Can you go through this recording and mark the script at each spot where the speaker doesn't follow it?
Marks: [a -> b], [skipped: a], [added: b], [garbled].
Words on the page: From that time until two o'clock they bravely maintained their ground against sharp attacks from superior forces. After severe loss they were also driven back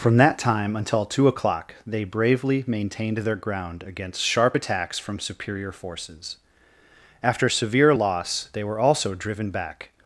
From that time until two o'clock they bravely maintained their ground against sharp attacks from superior forces. After severe loss they were also driven back